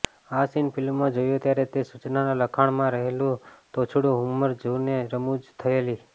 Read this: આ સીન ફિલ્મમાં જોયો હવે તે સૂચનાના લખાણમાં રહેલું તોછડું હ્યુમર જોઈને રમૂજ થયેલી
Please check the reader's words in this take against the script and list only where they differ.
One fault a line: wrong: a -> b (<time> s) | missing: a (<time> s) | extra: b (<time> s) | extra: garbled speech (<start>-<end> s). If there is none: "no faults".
wrong: હવે -> ત્યારે (1.4 s)